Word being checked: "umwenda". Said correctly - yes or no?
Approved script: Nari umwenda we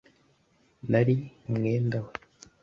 yes